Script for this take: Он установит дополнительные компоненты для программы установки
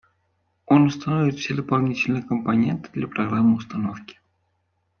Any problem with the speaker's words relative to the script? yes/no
yes